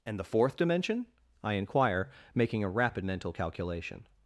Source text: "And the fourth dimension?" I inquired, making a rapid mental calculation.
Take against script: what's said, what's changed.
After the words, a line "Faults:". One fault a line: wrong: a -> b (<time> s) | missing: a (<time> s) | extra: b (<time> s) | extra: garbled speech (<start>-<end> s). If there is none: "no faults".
"And the fourth dimension?" I inquire, making a rapid mental calculation.
Faults:
wrong: inquired -> inquire (1.5 s)